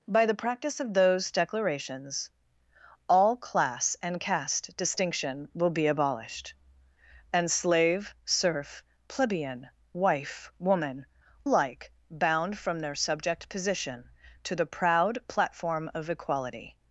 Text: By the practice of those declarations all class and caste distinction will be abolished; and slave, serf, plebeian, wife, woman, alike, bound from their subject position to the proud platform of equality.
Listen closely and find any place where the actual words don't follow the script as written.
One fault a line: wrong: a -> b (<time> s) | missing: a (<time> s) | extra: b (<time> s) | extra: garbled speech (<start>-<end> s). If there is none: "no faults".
no faults